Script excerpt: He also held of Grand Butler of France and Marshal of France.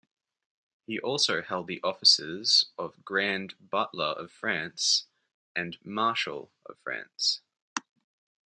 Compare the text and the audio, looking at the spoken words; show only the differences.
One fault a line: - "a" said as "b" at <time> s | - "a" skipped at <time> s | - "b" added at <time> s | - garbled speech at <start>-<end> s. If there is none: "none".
- "the offices" added at 1.7 s